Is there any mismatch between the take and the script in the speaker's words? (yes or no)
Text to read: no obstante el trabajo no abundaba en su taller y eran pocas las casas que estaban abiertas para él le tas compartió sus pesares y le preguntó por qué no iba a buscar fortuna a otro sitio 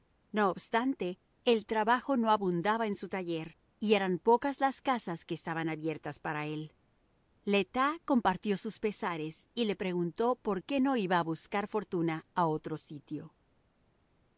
no